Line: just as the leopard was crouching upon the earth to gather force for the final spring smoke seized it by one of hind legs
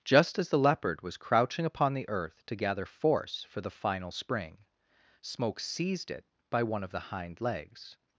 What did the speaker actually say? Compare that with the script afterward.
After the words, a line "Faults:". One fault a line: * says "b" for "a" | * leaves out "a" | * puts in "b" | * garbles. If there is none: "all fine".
just as the leopard was crouching upon the earth to gather force for the final spring smoke seized it by one of the hind legs
Faults:
* puts in "the"